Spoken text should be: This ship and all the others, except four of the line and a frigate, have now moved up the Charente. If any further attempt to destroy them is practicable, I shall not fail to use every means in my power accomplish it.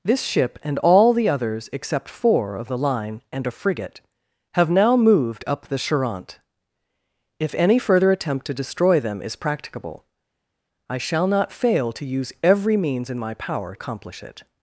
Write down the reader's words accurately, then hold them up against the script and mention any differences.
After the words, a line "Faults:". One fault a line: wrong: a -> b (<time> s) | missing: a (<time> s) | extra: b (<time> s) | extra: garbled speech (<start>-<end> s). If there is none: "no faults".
This ship and all the others, except four of the line and a frigate, have now moved up the Charente. If any further attempt to destroy them is practicable, I shall not fail to use every means in my power accomplish it.
Faults:
no faults